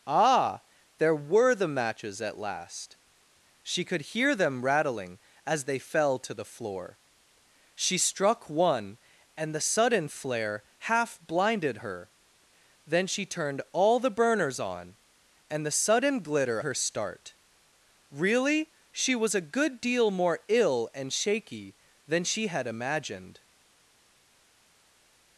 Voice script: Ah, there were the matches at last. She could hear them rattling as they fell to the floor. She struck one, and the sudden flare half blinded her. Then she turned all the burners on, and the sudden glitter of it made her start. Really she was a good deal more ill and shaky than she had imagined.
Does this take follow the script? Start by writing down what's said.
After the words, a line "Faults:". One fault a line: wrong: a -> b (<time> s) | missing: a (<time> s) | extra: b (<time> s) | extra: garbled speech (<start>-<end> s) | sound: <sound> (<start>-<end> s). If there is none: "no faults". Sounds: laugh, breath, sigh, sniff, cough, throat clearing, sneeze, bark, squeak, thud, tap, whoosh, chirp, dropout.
Ah, there were the matches at last. She could hear them rattling as they fell to the floor. She struck one, and the sudden flare half blinded her. Then she turned all the burners on, and the sudden glitter her start. Really she was a good deal more ill and shaky than she had imagined.
Faults:
missing: of it made (16.6 s)